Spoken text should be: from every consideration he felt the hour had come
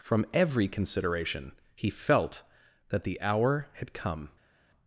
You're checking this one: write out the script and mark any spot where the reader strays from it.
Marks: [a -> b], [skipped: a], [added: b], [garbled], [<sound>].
from every consideration he felt [added: that] the hour had come